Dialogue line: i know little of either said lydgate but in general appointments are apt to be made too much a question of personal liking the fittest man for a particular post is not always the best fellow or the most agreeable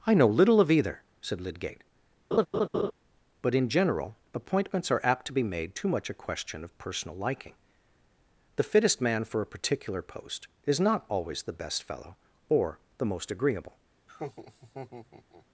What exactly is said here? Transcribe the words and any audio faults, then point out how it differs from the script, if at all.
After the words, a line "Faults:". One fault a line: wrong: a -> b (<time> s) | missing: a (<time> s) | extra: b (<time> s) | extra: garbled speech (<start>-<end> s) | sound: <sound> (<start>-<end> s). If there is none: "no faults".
i know little of either said lydgate but in general appointments are apt to be made too much a question of personal liking the fittest man for a particular post is not always the best fellow or the most agreeable
Faults:
sound: laugh (2.3-2.9 s)
sound: laugh (14.1-15.5 s)